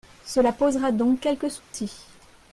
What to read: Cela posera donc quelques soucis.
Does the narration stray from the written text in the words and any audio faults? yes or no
yes